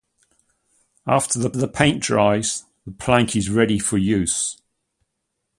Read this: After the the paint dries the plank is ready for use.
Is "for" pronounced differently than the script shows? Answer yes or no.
no